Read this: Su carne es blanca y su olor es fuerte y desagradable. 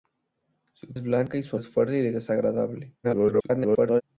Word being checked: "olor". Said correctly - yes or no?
no